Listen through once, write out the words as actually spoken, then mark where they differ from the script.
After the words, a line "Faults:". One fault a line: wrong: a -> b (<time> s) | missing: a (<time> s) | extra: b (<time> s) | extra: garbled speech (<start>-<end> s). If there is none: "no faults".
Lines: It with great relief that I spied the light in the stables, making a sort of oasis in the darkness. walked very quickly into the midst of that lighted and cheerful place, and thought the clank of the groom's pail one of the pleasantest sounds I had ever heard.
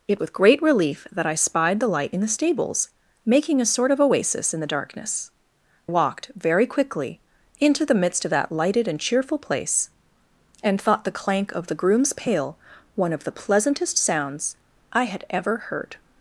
It with great relief that I spied the light in the stables, making a sort of oasis in the darkness. walked very quickly into the midst of that lighted and cheerful place, and thought the clank of the groom's pail one of the pleasantest sounds I had ever heard.
Faults:
no faults